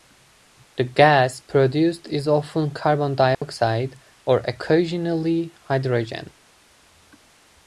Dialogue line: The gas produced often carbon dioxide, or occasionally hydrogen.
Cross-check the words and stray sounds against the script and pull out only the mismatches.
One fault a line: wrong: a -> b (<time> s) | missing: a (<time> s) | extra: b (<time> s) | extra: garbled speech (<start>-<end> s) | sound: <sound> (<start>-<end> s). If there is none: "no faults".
extra: is (2.1 s)
sound: dropout (3.3-3.4 s)